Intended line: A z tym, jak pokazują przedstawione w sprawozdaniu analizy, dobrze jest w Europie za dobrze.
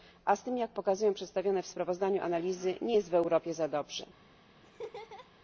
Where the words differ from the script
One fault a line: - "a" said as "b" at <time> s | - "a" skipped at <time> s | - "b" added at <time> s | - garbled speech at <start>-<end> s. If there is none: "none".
- "dobrze" said as "nie" at 2.8 s